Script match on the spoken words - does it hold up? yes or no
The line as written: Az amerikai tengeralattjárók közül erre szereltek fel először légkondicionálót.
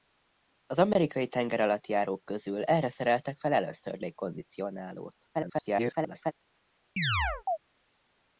no